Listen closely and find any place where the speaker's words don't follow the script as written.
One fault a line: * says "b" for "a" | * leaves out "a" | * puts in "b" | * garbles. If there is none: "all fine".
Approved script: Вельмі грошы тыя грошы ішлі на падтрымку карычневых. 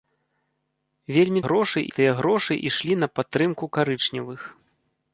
all fine